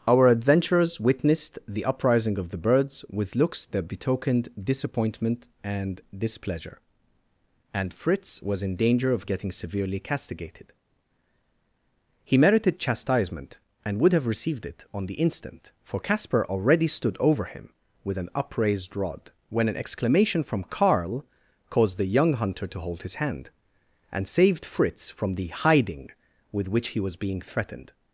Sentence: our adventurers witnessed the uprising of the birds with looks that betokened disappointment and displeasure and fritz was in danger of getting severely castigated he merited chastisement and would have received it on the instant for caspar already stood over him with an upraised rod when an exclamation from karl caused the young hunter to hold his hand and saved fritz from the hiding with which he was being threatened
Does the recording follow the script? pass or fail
pass